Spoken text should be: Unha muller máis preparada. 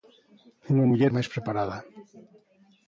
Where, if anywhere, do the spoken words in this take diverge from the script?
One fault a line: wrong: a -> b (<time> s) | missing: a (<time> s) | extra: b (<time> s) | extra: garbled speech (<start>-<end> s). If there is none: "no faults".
no faults